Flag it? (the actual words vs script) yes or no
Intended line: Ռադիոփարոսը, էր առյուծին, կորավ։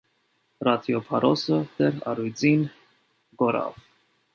no